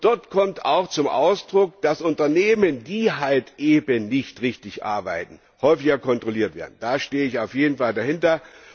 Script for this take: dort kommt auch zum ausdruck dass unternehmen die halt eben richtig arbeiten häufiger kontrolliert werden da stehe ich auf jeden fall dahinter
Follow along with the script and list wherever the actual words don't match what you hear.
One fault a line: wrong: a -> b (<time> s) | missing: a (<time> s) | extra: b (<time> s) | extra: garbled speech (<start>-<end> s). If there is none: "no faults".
extra: nicht (4.1 s)